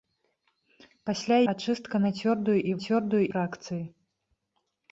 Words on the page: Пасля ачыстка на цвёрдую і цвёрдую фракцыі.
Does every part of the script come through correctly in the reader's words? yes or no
yes